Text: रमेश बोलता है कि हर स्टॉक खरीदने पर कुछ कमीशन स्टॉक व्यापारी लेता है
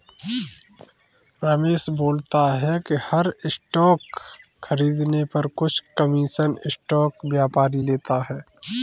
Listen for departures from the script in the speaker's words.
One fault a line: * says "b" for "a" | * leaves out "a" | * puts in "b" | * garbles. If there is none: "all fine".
all fine